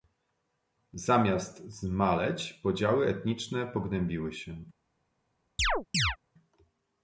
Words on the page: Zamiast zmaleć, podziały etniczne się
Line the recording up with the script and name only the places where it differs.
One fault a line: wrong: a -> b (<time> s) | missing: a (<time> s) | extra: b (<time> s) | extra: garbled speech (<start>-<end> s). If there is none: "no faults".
extra: pogłębiły (3.7 s)